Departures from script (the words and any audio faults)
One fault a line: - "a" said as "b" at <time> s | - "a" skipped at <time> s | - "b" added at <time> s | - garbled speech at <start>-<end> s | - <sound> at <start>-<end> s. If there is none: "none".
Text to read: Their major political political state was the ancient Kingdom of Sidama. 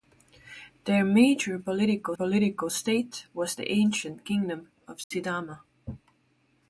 - dropout at 5.0-5.1 s